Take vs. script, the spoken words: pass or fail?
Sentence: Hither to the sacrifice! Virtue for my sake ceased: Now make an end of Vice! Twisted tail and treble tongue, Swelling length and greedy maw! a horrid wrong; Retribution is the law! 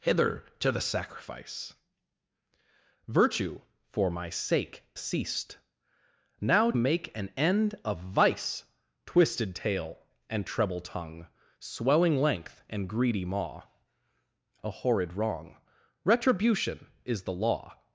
pass